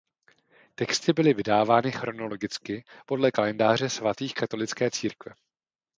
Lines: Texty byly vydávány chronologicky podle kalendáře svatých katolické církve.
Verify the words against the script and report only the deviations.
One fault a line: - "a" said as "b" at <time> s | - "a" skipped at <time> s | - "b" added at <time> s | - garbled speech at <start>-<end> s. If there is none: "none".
none